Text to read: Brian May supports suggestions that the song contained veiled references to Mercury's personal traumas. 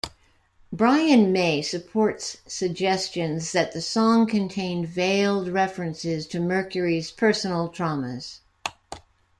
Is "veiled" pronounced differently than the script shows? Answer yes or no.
no